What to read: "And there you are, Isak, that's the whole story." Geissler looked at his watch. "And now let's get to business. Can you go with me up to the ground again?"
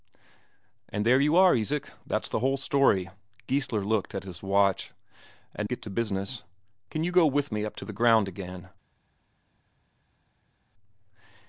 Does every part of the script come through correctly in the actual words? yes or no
no